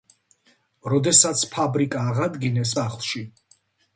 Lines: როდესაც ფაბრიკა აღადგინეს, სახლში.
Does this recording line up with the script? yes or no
yes